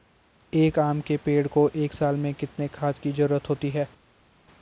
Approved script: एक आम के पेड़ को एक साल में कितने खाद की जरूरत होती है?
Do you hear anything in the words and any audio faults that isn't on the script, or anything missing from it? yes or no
no